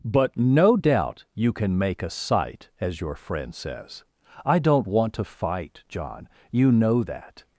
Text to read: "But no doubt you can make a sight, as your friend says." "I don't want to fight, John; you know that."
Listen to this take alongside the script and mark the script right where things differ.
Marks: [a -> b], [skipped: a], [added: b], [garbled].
"But no doubt you can make a sight, as your friend says." "I don't want to fight, John; you know that."